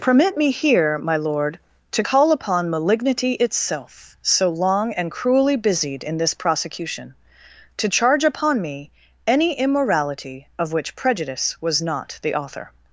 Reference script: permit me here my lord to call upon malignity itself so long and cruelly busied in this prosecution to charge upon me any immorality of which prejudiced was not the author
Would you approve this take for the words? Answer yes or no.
no